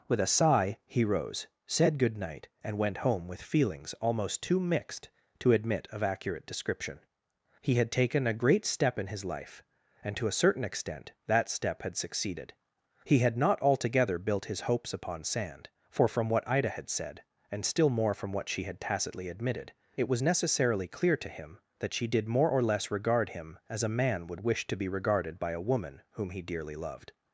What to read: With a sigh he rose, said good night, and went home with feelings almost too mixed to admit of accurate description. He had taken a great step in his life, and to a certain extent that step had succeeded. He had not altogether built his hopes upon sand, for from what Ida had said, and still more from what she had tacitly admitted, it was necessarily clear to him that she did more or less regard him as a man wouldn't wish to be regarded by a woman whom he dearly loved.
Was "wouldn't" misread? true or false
true